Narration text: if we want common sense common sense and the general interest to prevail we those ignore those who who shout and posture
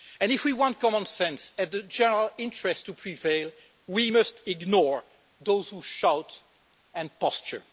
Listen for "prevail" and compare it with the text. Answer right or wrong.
right